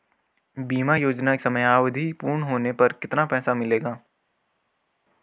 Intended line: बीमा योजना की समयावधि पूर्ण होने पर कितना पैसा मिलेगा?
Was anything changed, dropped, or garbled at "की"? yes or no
yes